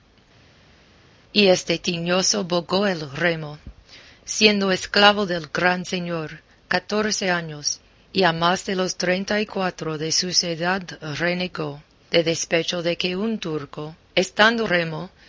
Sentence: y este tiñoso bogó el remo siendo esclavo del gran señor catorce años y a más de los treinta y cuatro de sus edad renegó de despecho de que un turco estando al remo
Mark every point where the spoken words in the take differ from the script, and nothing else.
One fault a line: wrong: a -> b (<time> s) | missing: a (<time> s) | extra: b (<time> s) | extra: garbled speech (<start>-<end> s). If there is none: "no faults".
missing: al (14.7 s)